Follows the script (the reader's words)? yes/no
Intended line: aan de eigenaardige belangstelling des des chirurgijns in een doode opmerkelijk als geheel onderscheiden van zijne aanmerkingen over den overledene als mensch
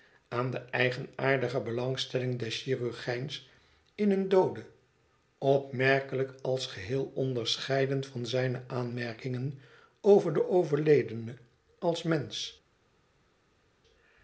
no